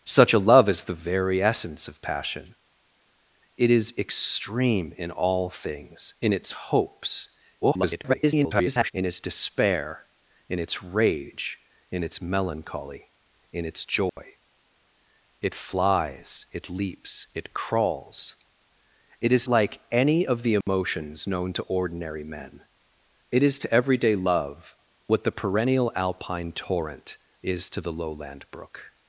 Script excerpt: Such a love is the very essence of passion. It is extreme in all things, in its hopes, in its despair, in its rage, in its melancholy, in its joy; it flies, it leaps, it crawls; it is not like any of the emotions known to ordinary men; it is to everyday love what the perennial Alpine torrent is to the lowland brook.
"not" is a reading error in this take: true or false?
true